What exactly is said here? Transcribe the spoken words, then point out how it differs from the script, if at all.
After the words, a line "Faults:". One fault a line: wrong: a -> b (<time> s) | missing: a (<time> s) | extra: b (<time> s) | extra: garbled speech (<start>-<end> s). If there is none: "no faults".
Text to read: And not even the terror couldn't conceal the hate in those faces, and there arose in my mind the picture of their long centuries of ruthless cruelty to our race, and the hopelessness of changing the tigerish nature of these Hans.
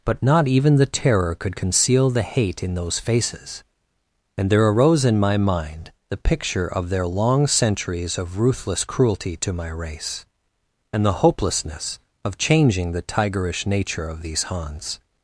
But not even the terror could conceal the hate in those faces, and there arose in my mind the picture of their long centuries of ruthless cruelty to my race, and the hopelessness of changing the tigerish nature of these Hans.
Faults:
wrong: And -> But (0.1 s)
wrong: couldn't -> could (1.4 s)
wrong: our -> my (9.5 s)